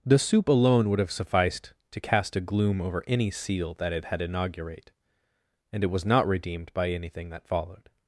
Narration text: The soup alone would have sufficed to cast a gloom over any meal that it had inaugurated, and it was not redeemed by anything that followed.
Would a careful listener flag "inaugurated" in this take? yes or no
yes